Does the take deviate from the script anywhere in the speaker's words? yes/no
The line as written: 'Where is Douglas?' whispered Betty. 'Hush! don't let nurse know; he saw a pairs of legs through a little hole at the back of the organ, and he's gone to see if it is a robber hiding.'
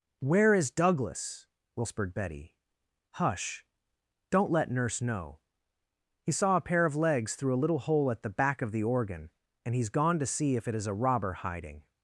yes